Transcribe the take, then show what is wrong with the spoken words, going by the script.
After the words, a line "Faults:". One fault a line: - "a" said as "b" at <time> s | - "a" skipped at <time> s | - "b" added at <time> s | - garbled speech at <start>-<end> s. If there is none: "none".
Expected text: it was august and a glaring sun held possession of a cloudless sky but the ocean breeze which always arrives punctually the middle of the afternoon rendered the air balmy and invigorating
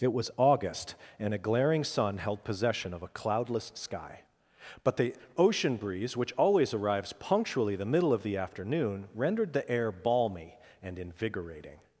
it was august and a glaring sun held possession of a cloudless sky but the ocean breeze which always arrives punctually the middle of the afternoon rendered the air balmy and invigorating
Faults:
none